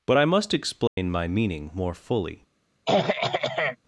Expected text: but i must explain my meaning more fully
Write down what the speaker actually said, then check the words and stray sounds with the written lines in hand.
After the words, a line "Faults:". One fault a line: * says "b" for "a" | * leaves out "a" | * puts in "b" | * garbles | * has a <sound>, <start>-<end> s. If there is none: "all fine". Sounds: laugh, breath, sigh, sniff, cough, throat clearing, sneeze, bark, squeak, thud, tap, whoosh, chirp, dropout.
but i must explain my meaning more fully
Faults:
* has a dropout, 0.9-1.0 s
* has a throat clearing, 2.9-3.8 s